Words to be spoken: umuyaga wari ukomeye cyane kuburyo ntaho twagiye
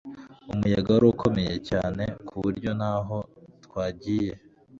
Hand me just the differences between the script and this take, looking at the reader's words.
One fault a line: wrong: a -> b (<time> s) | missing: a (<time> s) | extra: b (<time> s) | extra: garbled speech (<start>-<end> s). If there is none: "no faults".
no faults